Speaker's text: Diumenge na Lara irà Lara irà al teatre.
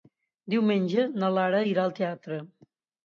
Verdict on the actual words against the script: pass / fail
fail